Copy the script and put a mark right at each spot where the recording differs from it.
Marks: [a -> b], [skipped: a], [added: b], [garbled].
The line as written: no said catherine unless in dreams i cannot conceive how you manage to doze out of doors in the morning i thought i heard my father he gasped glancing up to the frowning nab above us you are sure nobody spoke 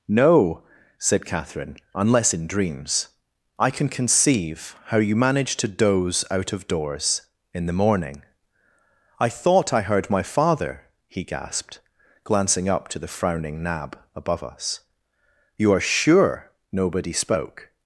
no said catherine unless in dreams i [cannot -> can] conceive how you manage to doze out of doors in the morning i thought i heard my father he gasped glancing up to the frowning nab above us you are sure nobody spoke